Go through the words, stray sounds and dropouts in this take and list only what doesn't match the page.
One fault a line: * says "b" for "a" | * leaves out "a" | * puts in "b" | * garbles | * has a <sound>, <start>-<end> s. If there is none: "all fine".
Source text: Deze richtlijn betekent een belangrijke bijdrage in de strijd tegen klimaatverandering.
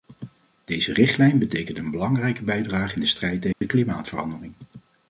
* has a dropout, 3.5-3.6 s